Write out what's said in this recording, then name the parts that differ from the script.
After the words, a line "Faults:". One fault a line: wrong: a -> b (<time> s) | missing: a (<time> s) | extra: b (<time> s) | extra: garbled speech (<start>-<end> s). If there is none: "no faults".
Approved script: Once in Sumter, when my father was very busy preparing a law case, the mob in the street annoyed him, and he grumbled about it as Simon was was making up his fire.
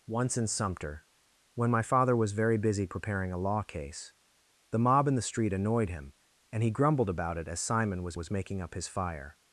Once in Sumter, when my father was very busy preparing a law case, the mob in the street annoyed him, and he grumbled about it as Simon was was making up his fire.
Faults:
no faults